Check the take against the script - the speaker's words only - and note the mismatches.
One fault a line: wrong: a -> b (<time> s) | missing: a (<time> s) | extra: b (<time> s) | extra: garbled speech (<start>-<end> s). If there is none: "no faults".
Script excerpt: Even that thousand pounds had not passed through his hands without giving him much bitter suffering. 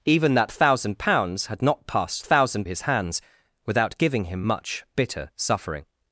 wrong: through -> thousand (2.2 s)